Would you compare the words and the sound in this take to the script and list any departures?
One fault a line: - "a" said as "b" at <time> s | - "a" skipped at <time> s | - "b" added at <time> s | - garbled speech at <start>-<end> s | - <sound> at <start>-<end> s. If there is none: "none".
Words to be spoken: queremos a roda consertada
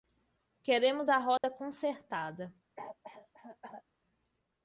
- dropout at 1.4-1.4 s
- cough at 2.8-3.8 s